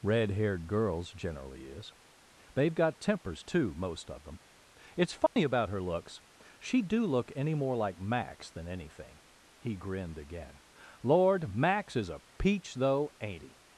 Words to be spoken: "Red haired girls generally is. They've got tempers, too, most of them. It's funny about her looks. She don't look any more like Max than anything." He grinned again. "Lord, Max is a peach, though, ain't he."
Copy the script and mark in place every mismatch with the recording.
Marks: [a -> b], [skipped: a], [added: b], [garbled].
"Red haired girls generally is. They've got tempers, too, most of them. It's funny about her looks. She [don't -> do] look any more like Max than anything." He grinned again. "Lord, Max is a peach, though, ain't he."